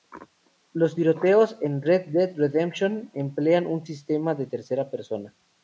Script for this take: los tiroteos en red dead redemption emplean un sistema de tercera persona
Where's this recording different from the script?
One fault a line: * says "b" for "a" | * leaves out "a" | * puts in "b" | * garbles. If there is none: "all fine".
all fine